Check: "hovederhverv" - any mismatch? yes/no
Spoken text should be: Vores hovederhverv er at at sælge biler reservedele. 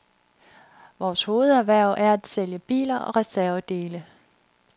no